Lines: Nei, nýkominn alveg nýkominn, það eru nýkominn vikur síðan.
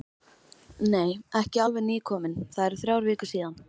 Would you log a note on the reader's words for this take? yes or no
yes